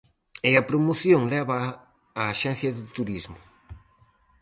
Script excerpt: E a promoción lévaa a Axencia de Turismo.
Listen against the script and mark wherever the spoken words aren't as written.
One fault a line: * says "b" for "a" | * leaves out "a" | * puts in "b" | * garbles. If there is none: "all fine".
all fine